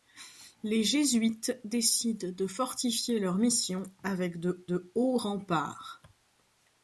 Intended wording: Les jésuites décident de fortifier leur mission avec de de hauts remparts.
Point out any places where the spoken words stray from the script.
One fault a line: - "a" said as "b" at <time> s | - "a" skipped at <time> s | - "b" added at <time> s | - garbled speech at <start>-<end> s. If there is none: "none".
none